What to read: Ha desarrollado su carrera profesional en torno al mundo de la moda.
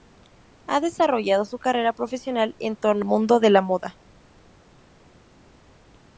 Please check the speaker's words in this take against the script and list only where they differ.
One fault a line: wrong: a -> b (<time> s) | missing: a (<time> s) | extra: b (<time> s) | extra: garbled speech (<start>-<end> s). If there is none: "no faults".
missing: al (3.0 s)